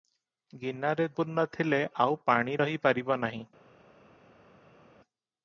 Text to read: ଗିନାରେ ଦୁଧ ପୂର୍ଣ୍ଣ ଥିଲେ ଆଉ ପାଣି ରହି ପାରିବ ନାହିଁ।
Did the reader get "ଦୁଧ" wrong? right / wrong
wrong